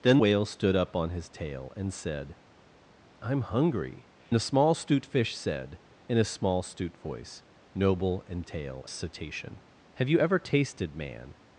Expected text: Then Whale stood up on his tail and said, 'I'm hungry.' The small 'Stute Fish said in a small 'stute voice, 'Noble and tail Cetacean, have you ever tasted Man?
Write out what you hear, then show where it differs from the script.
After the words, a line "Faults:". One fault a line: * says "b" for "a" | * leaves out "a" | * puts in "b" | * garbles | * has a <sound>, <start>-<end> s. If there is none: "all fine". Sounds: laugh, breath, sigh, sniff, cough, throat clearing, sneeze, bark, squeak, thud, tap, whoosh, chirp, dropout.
Then Whale stood up on his tail and said, 'I'm hungry.' The small 'Stute Fish said in a small 'stute voice, 'Noble and tail Cetacean, have you ever tasted Man?
Faults:
all fine